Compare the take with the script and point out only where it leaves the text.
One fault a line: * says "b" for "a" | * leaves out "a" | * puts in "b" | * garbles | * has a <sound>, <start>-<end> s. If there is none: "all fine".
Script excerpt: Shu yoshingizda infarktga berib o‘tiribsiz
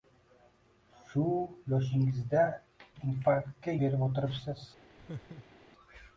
* has a laugh, 5.0-5.7 s